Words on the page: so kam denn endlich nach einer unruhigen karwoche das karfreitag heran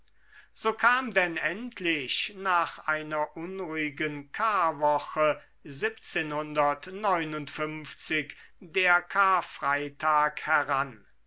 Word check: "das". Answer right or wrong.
wrong